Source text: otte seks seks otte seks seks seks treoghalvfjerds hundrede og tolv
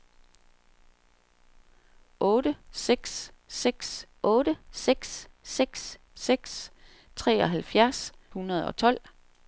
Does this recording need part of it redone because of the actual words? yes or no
no